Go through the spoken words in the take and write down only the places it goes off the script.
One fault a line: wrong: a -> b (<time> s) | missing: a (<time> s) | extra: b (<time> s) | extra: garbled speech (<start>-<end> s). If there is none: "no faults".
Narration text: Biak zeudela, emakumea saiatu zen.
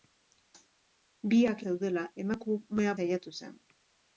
no faults